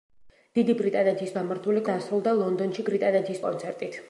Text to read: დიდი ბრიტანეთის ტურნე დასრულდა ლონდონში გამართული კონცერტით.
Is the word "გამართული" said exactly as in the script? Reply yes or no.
no